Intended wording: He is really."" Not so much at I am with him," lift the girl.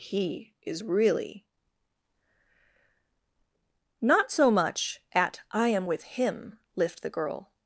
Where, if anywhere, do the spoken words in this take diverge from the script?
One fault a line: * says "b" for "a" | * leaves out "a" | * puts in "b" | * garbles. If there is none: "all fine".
all fine